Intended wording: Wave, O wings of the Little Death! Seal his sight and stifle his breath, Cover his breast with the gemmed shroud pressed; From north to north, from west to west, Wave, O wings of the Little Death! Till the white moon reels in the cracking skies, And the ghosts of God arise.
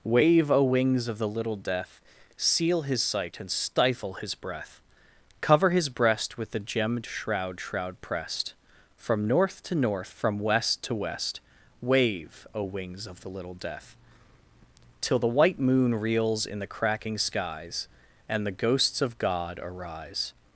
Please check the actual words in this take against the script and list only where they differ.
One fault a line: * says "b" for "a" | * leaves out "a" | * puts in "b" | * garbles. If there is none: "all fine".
* puts in "shroud"